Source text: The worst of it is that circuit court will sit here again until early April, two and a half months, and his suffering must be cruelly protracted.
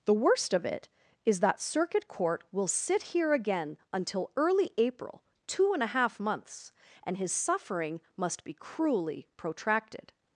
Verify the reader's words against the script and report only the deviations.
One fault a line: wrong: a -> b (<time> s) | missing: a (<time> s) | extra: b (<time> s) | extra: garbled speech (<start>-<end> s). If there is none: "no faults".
no faults